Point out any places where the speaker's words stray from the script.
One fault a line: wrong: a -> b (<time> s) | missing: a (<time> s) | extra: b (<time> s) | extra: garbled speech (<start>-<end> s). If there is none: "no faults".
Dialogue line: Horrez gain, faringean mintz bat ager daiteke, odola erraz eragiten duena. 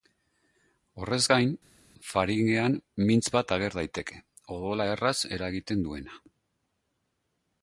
no faults